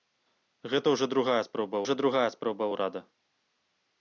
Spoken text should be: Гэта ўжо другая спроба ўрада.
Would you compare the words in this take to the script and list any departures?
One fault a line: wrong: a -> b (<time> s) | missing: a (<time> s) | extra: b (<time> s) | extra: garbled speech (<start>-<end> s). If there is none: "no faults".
extra: ўжо другая спроба (1.8 s)